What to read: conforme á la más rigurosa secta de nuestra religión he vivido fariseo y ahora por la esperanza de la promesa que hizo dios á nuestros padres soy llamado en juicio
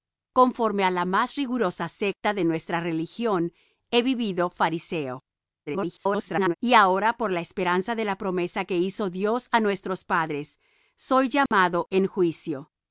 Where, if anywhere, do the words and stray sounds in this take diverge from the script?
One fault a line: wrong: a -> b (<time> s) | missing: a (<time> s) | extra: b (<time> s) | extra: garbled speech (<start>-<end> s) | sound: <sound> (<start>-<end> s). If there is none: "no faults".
extra: garbled speech (5.7-6.5 s)
sound: dropout (11.5-11.5 s)